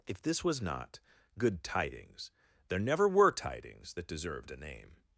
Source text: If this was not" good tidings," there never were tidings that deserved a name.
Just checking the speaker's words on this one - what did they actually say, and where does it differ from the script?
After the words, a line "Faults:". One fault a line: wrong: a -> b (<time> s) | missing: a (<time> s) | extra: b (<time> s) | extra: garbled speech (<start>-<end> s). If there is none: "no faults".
If this was not" good tidings," there never were tidings that deserved a name.
Faults:
no faults